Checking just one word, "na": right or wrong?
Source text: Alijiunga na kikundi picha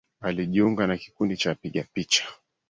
right